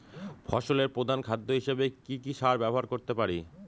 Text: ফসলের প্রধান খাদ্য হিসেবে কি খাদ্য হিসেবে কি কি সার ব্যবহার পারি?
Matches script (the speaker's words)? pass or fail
fail